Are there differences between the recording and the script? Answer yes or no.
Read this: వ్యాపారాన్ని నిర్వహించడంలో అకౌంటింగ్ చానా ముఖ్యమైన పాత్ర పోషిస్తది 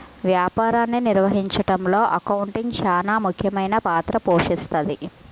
no